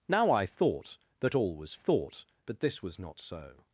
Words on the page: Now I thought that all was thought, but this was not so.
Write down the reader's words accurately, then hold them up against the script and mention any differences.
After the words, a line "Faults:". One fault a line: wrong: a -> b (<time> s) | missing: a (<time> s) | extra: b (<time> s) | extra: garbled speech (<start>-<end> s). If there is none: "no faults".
Now I thought that all was thought, but this was not so.
Faults:
no faults